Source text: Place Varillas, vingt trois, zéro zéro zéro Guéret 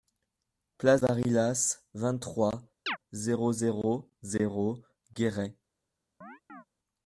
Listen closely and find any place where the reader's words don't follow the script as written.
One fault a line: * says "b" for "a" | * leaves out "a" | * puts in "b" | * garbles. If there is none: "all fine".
all fine